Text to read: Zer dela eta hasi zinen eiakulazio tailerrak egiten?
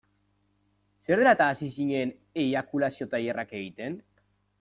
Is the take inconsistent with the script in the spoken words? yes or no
no